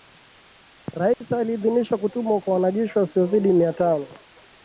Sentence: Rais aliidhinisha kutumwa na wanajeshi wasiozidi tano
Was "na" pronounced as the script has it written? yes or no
no